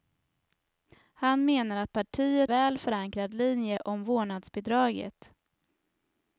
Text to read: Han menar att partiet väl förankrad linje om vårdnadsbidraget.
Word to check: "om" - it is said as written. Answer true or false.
true